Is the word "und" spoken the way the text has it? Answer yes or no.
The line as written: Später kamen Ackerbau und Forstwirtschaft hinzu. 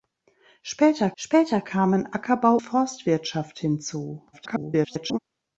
no